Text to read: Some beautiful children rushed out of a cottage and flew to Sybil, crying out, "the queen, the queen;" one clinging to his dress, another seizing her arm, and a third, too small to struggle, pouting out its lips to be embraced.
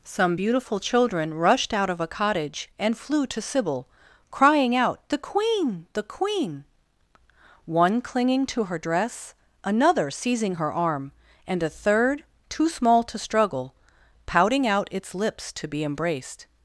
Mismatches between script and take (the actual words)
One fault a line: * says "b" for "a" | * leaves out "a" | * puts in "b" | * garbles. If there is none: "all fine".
* says "her" for "his"